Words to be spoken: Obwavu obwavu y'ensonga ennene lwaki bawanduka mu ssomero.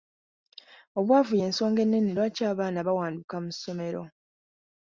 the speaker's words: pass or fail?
fail